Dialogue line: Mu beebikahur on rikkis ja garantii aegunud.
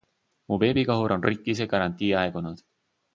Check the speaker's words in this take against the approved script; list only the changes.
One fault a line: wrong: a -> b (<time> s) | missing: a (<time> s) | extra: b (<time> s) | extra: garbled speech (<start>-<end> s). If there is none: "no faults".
no faults